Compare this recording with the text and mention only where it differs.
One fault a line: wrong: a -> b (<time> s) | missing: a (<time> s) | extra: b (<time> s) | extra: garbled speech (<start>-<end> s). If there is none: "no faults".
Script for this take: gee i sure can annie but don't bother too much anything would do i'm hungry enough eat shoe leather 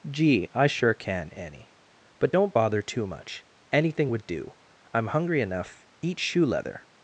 no faults